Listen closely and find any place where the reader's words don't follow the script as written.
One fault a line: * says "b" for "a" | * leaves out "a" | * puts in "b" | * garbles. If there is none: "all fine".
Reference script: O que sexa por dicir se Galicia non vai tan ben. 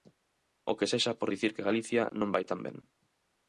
* says "que" for "se"